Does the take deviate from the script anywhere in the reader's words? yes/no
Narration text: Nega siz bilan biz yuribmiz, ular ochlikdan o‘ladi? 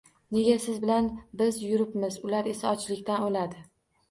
yes